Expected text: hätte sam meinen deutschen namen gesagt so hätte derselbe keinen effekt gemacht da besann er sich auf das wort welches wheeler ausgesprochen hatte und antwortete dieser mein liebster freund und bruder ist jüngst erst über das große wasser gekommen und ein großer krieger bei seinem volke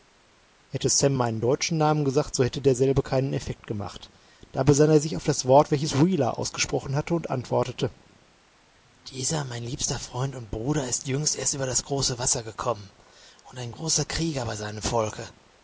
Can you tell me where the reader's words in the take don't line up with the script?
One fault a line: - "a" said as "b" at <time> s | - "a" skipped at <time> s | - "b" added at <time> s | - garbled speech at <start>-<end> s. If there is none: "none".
none